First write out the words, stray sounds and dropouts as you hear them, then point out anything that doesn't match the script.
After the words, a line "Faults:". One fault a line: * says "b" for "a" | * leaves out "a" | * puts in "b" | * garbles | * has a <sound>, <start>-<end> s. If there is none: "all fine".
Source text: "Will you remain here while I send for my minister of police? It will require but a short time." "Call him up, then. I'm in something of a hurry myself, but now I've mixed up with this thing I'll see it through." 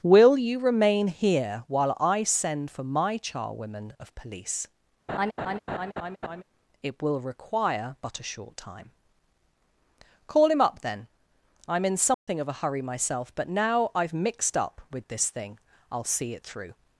"Will you remain here while I send for my charwomen of police? It will require but a short time." "Call him up, then. I'm in something of a hurry myself, but now I've mixed up with this thing I'll see it through."
Faults:
* says "charwomen" for "minister"
* has a laugh, 5.1-6.4 s
* has a dropout, 12.1-12.3 s